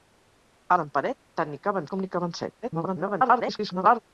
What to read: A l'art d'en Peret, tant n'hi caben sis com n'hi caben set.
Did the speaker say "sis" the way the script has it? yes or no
no